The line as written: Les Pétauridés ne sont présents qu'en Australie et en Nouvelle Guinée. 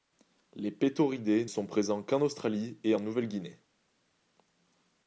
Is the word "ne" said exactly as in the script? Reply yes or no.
no